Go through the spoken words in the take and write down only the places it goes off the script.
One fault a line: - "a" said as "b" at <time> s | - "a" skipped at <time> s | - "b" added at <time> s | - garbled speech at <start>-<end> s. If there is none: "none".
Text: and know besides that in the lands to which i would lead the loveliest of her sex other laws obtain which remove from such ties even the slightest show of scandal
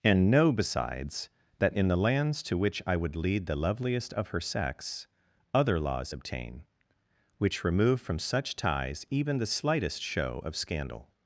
none